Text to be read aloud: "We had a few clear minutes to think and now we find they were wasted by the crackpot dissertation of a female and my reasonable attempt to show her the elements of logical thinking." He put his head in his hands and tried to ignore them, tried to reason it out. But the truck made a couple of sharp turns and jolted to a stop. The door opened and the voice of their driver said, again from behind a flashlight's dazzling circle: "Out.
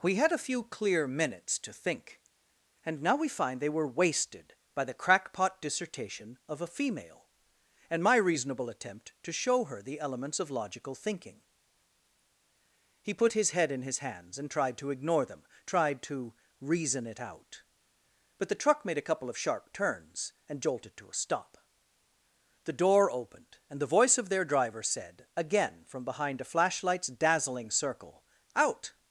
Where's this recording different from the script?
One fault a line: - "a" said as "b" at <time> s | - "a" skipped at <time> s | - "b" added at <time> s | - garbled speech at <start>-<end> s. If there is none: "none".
none